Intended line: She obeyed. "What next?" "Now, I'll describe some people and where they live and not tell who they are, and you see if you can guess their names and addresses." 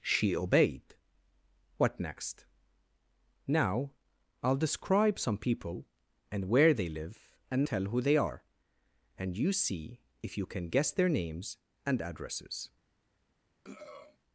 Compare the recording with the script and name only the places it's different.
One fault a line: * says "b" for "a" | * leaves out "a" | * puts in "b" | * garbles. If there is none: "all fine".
* leaves out "not"